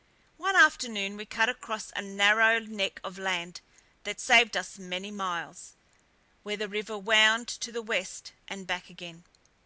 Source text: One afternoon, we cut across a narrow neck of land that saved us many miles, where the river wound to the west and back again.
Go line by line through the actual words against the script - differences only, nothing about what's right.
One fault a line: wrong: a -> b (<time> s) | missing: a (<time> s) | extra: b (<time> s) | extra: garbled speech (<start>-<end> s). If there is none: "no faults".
no faults